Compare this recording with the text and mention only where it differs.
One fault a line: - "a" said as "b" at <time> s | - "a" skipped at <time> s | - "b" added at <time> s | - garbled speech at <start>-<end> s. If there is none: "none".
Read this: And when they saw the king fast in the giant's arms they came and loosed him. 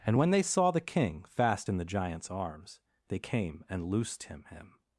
- "him" added at 4.5 s